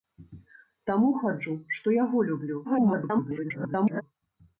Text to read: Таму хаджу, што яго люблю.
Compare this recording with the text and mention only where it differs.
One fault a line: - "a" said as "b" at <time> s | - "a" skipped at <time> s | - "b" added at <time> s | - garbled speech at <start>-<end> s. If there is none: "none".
- garbled speech at 2.6-4.0 s